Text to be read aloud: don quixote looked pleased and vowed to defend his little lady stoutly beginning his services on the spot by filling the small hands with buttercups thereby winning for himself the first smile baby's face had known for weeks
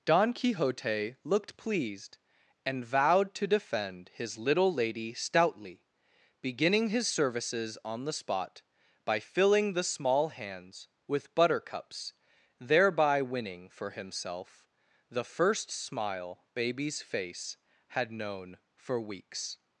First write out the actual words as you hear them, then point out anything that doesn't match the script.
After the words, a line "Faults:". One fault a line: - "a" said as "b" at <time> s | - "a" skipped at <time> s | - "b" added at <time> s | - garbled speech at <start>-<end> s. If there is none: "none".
don quixote looked pleased and vowed to defend his little lady stoutly beginning his services on the spot by filling the small hands with buttercups thereby winning for himself the first smile baby's face had known for weeks
Faults:
none